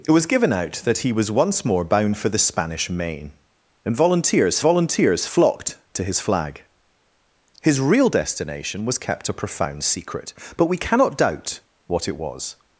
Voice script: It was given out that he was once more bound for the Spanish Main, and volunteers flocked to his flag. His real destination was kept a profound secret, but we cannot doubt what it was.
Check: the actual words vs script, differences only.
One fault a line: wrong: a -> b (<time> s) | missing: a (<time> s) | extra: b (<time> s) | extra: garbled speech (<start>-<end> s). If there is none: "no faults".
extra: volunteers (4.6 s)